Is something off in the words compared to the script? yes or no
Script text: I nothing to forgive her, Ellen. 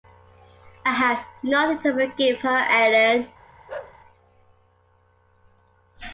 yes